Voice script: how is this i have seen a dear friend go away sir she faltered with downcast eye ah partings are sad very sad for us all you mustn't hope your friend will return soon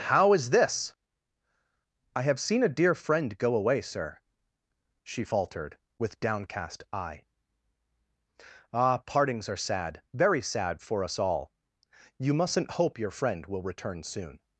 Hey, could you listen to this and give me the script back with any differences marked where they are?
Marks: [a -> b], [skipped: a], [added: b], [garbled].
how is this i have seen a dear friend go away sir she faltered with downcast eye ah partings are sad very sad for us all you mustn't hope your friend will return soon